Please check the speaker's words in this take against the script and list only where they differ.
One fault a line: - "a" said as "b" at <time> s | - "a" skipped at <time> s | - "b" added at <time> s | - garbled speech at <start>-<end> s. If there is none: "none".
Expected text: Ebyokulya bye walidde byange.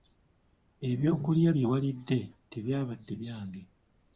- "tebyabadde" added at 2.5 s